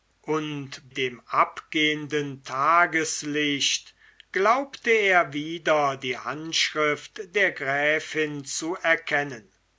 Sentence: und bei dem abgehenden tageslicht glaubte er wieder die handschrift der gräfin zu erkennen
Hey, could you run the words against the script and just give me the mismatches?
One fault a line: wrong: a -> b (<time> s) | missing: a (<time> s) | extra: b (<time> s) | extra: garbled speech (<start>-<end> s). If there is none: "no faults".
missing: bei (0.9 s)